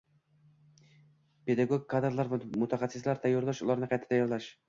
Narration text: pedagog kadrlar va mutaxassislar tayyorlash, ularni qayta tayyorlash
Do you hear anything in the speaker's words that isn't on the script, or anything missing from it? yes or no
no